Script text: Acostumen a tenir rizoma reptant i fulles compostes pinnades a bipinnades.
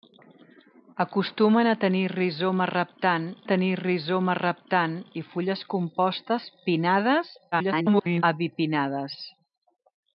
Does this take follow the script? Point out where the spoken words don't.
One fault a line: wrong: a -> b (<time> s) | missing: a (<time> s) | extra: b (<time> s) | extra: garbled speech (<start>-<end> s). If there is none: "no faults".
extra: tenir rizoma reptant (3.5 s)
extra: garbled speech (7.5-8.2 s)